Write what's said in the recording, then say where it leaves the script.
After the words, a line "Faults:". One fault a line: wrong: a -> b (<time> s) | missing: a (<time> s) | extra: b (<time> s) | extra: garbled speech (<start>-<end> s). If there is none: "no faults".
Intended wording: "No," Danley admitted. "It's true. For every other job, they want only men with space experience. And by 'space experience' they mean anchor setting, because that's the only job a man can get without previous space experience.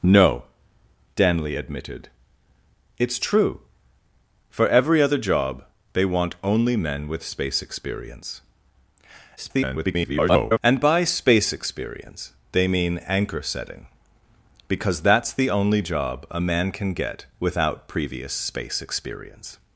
"No," Danley admitted. "It's true. For every other job, they want only men with space experience. [garbled] And by 'space experience' they mean anchor setting, because that's the only job a man can get without previous space experience.
Faults:
extra: garbled speech (9.4-10.6 s)